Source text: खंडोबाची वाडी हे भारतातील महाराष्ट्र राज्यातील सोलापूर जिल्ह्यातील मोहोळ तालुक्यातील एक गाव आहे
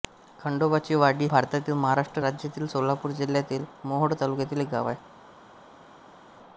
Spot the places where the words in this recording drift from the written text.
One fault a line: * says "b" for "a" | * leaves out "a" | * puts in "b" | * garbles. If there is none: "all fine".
* leaves out "हे"